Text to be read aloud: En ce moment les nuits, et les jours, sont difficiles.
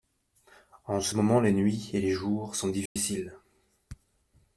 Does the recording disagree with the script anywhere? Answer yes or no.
no